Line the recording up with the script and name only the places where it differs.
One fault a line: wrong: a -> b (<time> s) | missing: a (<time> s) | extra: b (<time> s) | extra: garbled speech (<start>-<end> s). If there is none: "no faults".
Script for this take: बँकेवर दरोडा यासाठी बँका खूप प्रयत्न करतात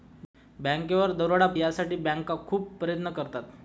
no faults